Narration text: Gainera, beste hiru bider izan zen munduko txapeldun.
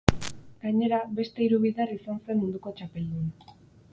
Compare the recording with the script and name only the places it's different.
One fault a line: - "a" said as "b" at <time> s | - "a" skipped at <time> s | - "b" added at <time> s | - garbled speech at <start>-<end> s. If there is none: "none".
none